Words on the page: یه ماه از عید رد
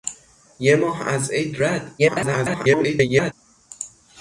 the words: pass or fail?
fail